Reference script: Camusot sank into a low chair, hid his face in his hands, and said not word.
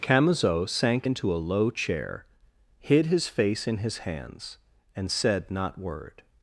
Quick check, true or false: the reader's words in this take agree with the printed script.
true